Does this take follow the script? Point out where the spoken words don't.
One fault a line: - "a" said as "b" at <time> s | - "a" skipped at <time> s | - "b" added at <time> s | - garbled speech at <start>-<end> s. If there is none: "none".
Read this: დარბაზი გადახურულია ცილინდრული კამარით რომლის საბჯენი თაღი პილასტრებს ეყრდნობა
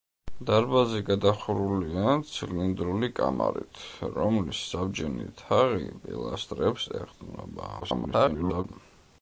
- garbled speech at 7.8-8.6 s